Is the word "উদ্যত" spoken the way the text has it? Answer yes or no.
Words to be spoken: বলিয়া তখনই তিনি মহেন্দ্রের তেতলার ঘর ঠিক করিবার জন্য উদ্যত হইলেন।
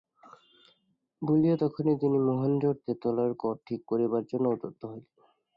yes